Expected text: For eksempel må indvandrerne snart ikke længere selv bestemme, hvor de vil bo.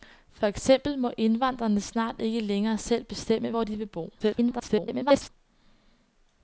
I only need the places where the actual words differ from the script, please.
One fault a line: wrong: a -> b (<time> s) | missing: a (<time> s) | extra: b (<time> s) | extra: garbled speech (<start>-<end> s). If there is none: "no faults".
extra: garbled speech (4.2-5.3 s)